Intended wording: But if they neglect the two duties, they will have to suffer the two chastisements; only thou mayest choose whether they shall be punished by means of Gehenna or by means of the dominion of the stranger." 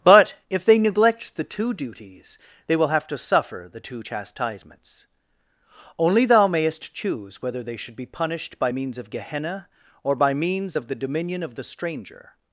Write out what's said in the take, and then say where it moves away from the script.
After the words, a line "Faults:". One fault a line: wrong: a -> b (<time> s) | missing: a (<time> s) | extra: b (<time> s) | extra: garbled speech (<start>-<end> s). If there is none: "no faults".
But if they neglect the two duties, they will have to suffer the two chastisements; only thou mayest choose whether they should be punished by means of Gehenna or by means of the dominion of the stranger."
Faults:
wrong: shall -> should (7.8 s)